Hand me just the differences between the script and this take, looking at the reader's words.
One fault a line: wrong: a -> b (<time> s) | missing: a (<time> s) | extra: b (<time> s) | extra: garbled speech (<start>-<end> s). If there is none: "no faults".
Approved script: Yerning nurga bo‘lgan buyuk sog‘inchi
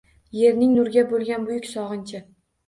no faults